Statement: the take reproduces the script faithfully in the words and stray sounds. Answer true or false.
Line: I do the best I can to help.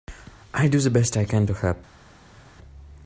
true